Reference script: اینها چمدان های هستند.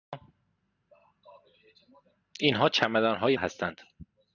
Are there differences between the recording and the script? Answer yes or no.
no